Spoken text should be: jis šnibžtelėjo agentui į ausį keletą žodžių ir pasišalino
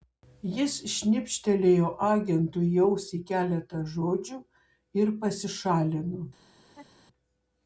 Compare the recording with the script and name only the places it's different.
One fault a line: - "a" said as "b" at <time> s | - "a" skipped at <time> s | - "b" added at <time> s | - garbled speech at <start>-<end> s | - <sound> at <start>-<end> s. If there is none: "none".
- laugh at 6.6-7.1 s